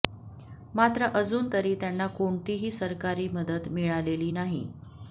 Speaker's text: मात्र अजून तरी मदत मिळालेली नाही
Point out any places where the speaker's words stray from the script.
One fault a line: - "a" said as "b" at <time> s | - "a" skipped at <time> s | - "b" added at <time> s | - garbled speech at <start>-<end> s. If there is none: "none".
- "त्यांना कोणतीही सरकारी" added at 1.8 s